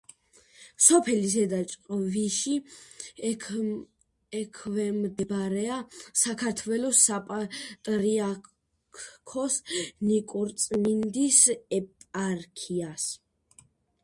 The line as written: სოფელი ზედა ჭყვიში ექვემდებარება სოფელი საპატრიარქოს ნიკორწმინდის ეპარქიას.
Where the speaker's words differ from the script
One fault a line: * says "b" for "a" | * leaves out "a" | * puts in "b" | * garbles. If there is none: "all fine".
* says "საქართველოს" for "სოფელი"